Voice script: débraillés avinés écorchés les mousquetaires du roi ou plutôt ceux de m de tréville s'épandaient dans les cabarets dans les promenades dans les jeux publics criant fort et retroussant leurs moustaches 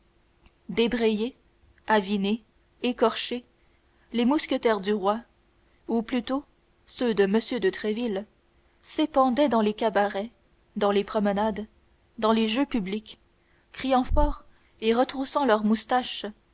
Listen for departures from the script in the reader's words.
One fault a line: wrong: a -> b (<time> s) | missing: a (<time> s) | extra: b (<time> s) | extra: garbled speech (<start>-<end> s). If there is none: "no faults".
no faults